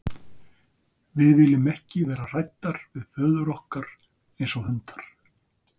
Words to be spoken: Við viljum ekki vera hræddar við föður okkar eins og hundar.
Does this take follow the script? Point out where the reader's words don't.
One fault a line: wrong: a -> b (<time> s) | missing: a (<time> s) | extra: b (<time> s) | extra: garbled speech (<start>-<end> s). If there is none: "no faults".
no faults